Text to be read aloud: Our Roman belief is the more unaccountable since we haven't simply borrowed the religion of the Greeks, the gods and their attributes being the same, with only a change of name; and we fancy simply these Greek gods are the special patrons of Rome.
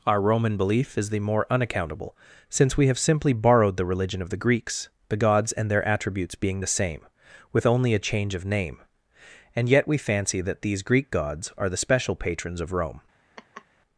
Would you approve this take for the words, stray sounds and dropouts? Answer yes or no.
no